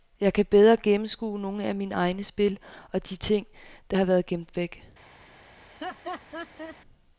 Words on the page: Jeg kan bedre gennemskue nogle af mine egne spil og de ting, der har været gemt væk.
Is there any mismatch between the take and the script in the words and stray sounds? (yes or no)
yes